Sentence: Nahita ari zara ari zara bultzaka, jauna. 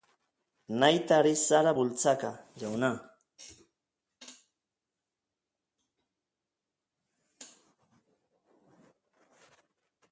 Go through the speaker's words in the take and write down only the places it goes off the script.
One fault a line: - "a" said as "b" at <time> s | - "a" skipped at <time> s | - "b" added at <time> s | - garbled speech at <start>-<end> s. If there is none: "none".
- "ari zara" skipped at 1.7 s